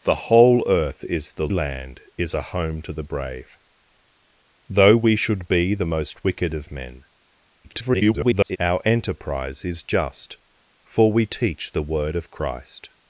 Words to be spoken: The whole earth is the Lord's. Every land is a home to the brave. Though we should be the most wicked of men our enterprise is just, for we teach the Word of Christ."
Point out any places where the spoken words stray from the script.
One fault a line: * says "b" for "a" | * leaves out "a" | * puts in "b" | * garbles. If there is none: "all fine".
* leaves out "Lord's Every"
* garbles